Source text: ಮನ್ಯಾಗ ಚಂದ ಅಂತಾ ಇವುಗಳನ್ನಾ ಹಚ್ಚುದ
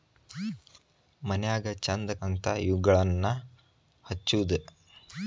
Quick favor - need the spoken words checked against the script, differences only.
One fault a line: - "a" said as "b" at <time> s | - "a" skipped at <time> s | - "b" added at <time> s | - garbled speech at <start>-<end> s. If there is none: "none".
none